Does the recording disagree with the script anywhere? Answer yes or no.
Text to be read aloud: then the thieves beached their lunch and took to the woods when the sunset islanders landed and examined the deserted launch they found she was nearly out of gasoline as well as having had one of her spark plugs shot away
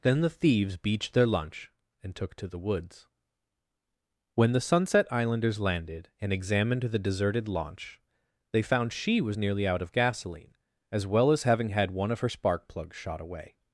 no